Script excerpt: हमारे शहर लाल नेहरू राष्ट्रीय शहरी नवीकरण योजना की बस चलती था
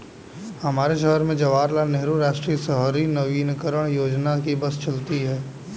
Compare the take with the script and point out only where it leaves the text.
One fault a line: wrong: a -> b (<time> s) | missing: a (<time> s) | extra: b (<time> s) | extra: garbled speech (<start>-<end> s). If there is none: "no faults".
extra: में जवाहर (1.2 s)
wrong: था -> है (5.2 s)